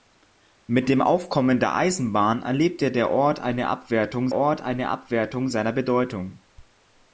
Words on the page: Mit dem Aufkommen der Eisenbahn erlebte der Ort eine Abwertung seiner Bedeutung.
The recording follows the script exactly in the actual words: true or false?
false